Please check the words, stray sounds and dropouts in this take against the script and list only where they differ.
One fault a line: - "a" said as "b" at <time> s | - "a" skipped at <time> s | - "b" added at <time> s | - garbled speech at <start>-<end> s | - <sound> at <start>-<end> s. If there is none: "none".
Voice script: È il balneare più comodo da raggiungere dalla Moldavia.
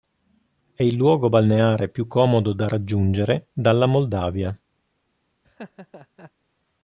- "luogo" added at 1.0 s
- laugh at 5.4-6.3 s